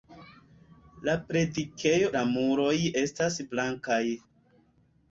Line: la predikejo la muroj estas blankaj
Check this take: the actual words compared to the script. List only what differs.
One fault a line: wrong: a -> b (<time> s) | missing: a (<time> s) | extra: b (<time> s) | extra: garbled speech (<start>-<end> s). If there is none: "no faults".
no faults